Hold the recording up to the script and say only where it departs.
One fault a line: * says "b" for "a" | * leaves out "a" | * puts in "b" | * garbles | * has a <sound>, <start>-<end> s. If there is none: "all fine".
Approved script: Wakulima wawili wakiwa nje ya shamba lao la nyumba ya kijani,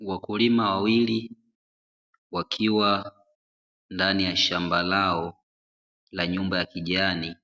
* says "ndani" for "nje"